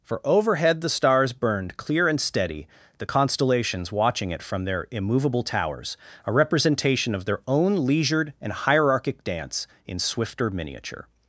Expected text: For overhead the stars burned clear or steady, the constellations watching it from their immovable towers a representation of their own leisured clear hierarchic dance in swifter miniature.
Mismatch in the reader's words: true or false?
true